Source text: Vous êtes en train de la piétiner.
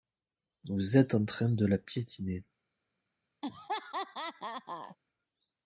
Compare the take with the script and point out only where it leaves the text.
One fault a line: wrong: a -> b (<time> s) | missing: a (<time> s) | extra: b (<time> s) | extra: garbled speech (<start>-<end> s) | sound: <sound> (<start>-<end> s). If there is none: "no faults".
sound: laugh (3.4-5.0 s)